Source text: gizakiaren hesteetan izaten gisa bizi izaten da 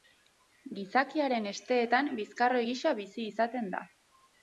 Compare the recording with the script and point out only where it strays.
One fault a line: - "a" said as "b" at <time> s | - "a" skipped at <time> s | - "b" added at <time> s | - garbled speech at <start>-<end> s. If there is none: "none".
- "izaten" said as "bizkarroi" at 2.2 s